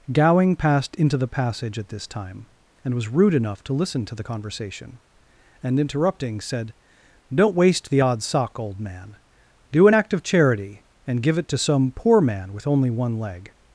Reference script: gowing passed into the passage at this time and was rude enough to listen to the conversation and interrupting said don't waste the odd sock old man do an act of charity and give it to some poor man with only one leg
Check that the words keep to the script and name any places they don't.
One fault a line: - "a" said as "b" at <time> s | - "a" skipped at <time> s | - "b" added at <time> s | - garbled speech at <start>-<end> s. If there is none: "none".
none